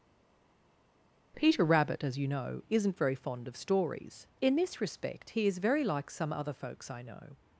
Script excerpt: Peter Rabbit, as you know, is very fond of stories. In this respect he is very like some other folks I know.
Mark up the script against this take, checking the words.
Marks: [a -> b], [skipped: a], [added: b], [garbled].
Peter Rabbit, as you know, [is -> isn't] very fond of stories. In this respect he is very like some other folks I know.